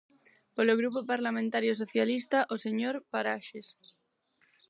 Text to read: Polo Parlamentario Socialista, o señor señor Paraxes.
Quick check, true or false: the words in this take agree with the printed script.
false